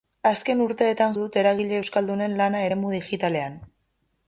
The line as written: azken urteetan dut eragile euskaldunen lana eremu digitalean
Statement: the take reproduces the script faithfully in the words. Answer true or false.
true